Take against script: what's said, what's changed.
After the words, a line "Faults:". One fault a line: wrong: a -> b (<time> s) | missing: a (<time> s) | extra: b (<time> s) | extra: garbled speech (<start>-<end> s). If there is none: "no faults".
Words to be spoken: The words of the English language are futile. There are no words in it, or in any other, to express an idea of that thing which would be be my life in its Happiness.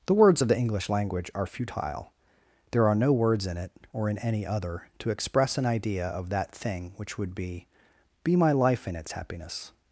The words of the English language are futile. There are no words in it, or in any other, to express an idea of that thing which would be be my life in its Happiness.
Faults:
no faults